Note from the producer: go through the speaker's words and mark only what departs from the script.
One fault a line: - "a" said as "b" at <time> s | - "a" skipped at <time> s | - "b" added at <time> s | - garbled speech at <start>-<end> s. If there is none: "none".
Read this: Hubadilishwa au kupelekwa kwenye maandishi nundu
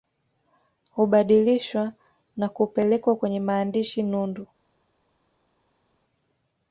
- "au" said as "na" at 2.4 s